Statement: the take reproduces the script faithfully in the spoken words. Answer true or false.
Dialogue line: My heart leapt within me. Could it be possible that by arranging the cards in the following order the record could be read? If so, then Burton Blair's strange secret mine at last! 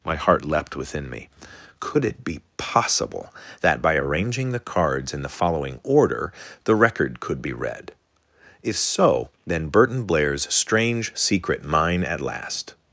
true